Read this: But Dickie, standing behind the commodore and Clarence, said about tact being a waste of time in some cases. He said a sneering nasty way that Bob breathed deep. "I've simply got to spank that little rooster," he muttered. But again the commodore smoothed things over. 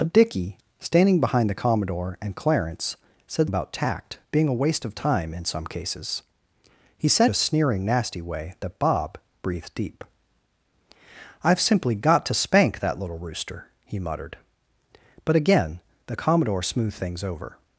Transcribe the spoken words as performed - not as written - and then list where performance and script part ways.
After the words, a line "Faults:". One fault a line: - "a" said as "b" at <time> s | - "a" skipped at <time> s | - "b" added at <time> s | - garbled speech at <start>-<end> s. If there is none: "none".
But Dickie, standing behind the commodore and Clarence, said about tact being a waste of time in some cases. He said a sneering nasty way that Bob breathed deep. "I've simply got to spank that little rooster," he muttered. But again the commodore smoothed things over.
Faults:
none